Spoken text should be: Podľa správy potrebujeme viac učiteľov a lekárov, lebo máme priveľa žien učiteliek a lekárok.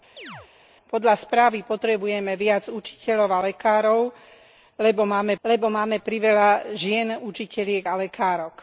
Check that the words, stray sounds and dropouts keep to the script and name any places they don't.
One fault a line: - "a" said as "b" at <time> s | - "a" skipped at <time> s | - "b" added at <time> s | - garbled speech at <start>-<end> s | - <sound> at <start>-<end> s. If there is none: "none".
- chirp at 0.2-0.5 s
- "lebo máme" added at 5.4 s